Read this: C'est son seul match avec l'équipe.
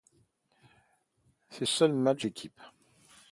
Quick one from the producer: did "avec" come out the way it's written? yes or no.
no